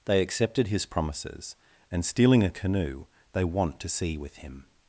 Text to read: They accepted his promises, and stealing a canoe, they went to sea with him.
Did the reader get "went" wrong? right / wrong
wrong